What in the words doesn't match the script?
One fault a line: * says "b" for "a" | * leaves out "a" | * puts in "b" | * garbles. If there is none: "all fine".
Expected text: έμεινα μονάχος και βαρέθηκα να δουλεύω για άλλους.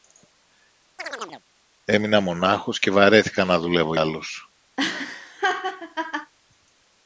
* leaves out "για"